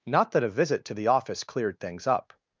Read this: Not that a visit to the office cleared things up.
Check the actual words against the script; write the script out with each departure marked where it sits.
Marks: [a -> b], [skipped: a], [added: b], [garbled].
Not that a visit to the office cleared things up.